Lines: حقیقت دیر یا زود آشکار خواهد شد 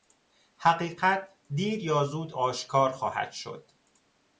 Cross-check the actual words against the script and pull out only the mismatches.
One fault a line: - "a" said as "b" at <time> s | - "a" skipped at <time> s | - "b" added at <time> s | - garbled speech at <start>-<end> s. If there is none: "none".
none